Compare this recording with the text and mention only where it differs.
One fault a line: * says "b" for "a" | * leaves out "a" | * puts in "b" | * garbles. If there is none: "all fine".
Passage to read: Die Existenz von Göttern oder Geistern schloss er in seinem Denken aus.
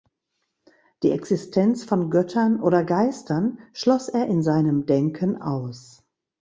all fine